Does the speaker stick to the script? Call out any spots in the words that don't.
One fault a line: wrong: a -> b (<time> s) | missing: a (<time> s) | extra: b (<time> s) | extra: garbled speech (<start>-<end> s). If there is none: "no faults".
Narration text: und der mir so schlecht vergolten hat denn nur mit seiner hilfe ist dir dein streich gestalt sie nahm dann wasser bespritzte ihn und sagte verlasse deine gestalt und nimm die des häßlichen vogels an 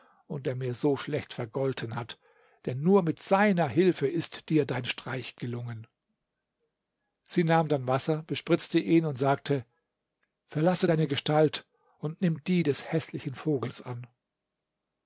wrong: gestalt -> gelungen (5.3 s)